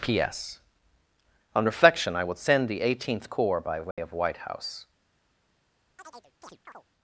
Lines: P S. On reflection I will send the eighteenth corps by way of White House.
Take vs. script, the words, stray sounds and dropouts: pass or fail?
fail